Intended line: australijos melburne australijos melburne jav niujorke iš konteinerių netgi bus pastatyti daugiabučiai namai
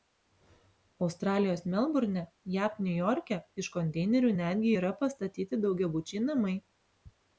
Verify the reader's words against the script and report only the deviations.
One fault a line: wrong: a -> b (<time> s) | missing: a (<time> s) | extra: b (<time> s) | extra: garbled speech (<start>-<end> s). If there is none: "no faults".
missing: australijos melburne (2.2 s)
wrong: bus -> yra (4.8 s)